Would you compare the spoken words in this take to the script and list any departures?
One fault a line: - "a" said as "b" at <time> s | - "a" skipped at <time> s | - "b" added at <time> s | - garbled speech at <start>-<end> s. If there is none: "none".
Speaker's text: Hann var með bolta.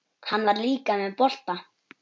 - "líka" added at 0.7 s